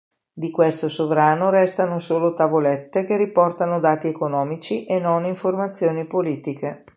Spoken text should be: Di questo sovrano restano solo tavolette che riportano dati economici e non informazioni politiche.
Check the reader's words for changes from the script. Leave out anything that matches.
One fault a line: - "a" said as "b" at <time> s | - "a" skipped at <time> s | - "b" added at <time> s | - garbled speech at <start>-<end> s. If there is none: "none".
none